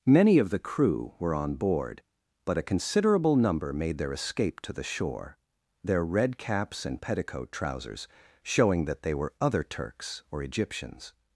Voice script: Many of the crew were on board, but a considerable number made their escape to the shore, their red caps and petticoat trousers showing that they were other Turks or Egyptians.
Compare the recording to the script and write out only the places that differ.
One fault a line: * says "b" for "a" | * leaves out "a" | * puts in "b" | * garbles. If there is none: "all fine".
all fine